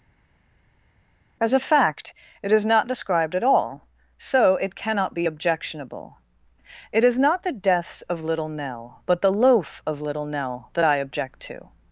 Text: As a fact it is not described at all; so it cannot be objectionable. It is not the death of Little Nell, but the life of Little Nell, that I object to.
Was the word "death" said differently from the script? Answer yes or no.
yes